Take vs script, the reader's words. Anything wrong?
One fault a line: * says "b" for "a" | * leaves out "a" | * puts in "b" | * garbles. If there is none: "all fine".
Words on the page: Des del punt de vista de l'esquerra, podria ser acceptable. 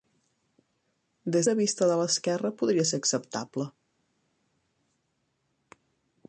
* leaves out "del punt"